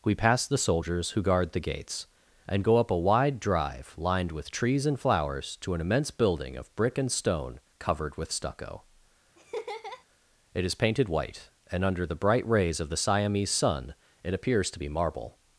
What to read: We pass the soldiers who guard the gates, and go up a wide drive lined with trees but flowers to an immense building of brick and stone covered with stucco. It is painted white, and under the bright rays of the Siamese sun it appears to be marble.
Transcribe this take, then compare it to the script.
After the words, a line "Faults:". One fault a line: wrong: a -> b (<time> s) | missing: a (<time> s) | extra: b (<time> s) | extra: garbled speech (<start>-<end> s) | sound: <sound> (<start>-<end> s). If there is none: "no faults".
We pass the soldiers who guard the gates, and go up a wide drive lined with trees and flowers to an immense building of brick and stone covered with stucco. It is painted white, and under the bright rays of the Siamese sun it appears to be marble.
Faults:
wrong: but -> and (4.9 s)
sound: laugh (9.4-10.0 s)